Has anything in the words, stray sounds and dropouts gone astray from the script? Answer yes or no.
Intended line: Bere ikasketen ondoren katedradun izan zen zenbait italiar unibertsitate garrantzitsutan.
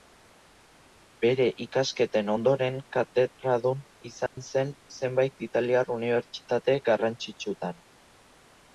yes